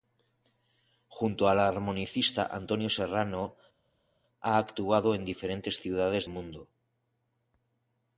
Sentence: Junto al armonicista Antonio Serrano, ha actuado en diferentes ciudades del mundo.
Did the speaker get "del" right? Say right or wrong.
wrong